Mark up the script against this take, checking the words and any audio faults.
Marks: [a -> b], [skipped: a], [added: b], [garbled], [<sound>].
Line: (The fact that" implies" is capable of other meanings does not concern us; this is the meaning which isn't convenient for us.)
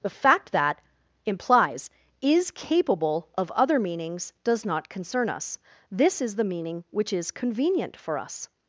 (The fact that" implies" is capable of other meanings does not concern us; this is the meaning which [isn't -> is] convenient for us.)